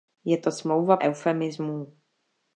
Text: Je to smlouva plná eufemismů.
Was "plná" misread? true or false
true